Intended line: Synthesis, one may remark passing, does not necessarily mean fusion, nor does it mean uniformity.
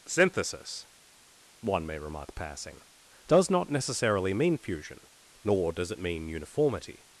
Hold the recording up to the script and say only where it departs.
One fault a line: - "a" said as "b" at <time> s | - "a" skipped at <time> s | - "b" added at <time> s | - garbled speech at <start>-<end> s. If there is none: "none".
none